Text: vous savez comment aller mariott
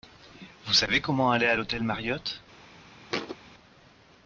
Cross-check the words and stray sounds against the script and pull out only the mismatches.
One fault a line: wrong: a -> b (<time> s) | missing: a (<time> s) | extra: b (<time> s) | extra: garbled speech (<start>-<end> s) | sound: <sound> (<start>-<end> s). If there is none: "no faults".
extra: à l'hôtel (1.4 s)
sound: thud (3.1-3.4 s)